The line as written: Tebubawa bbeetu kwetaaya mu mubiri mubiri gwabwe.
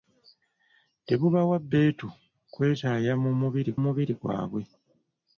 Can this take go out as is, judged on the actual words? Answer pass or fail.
pass